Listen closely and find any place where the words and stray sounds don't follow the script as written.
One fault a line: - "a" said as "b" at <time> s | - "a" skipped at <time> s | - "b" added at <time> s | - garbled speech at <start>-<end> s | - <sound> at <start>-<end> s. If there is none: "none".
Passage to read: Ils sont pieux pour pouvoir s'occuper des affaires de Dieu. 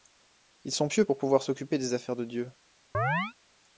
- chirp at 2.9-3.3 s